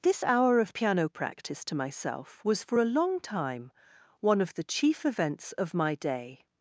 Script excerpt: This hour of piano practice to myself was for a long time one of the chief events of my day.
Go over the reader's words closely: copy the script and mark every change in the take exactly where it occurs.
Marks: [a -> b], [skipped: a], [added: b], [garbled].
This hour of piano practice to myself was for a long time one of the chief events of my day.